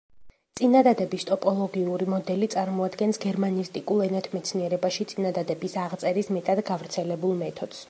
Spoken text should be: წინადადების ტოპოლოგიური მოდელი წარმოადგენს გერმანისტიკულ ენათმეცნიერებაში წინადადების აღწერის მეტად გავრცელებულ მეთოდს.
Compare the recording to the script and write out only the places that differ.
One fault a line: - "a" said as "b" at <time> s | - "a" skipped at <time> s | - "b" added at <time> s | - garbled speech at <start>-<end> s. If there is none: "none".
none